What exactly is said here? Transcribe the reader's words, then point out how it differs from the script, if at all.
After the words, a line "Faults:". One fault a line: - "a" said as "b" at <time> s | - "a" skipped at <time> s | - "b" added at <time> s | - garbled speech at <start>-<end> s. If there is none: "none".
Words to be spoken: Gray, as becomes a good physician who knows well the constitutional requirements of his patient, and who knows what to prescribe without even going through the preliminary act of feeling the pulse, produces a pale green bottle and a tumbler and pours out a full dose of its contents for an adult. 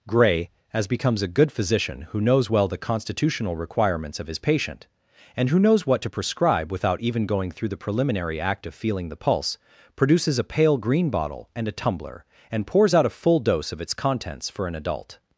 Gray, as becomes a good physician who knows well the constitutional requirements of his patient, and who knows what to prescribe without even going through the preliminary act of feeling the pulse, produces a pale green bottle and a tumbler and pours out a full dose of its contents for an adult.
Faults:
none